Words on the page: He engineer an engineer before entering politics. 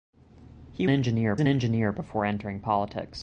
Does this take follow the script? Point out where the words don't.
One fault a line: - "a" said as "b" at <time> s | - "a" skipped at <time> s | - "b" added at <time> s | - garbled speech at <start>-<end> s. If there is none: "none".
none